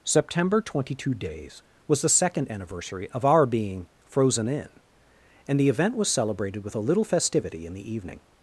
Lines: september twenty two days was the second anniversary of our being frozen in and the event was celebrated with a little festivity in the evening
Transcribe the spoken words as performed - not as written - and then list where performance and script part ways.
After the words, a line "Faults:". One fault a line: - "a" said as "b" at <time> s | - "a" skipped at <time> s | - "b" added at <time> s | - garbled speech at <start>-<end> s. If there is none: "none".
september twenty two days was the second anniversary of our being frozen in and the event was celebrated with a little festivity in the evening
Faults:
none